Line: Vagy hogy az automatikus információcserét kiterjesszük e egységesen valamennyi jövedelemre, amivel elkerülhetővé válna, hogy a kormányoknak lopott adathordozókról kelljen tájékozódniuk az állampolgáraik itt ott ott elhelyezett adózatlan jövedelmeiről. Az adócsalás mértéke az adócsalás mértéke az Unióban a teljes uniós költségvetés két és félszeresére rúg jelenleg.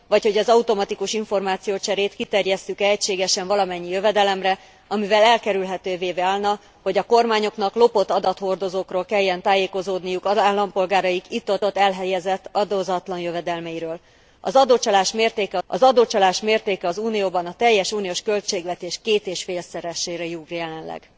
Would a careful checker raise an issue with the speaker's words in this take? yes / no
no